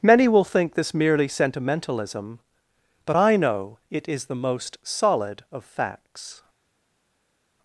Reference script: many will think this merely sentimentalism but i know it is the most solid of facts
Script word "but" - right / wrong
right